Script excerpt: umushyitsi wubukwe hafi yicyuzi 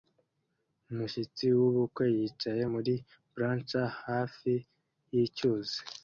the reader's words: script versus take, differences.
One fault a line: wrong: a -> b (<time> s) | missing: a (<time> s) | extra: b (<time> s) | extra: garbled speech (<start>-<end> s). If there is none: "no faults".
extra: yicaye muri blachers (2.2 s)